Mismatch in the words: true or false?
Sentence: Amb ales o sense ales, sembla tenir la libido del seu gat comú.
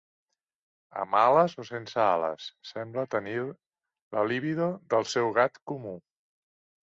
false